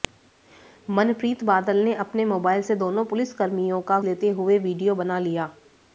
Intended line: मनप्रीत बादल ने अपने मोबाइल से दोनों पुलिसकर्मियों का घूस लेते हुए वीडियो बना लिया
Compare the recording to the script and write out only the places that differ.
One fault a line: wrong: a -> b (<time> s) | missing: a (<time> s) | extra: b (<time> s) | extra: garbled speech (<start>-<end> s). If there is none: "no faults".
missing: घूस (4.0 s)